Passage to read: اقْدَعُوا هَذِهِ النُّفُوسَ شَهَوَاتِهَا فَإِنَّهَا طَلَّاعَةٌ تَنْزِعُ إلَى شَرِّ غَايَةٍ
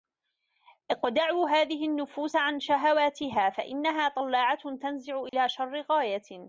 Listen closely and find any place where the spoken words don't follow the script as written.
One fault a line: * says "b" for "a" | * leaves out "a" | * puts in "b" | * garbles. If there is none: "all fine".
* puts in "عَنْ"